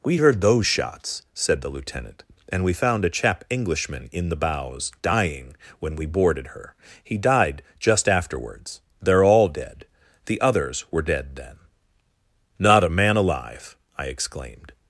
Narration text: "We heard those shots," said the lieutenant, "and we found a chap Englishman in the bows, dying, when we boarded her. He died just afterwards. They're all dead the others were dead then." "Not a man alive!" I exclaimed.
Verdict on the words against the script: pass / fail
pass